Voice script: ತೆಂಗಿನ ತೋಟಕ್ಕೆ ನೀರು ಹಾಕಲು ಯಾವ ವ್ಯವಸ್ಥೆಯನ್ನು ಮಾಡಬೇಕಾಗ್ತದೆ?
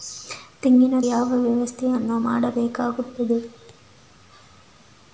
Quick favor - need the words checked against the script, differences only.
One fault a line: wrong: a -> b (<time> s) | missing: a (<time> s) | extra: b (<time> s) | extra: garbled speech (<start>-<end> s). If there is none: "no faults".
missing: ತೋಟಕ್ಕೆ ನೀರು ಹಾಕಲು (1.0 s)